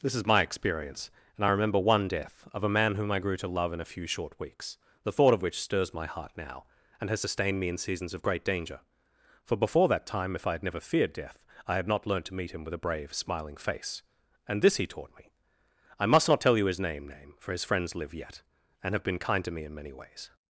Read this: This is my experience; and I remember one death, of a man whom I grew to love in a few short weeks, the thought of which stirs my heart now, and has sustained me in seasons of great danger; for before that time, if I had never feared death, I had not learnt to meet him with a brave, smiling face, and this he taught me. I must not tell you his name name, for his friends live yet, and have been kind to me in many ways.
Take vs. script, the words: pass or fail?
pass